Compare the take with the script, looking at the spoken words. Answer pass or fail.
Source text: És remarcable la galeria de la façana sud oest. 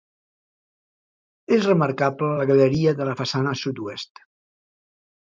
pass